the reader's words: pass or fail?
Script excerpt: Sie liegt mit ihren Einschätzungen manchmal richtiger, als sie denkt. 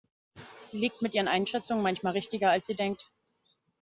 pass